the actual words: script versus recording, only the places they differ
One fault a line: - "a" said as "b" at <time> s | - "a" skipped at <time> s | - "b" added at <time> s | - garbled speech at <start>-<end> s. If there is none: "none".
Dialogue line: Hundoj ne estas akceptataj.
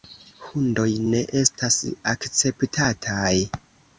none